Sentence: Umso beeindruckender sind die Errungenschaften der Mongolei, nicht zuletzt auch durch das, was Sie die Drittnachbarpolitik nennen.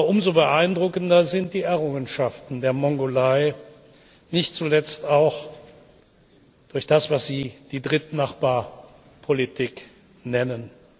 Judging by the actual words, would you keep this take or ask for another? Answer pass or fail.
pass